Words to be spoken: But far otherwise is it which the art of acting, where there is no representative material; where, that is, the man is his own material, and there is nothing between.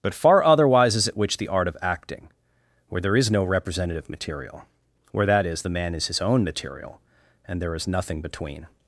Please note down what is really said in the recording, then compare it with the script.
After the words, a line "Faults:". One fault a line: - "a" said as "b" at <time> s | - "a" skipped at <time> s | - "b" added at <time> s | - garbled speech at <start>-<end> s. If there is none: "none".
But far otherwise is it which the art of acting, where there is no representative material; where, that is, the man is his own material, and there is nothing between.
Faults:
none